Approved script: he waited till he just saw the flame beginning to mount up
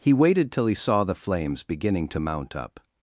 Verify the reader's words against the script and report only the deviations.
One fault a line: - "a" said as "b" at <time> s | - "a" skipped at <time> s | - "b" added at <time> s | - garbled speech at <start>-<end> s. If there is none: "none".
- "just" skipped at 0.7 s
- "flame" said as "flames" at 1.1 s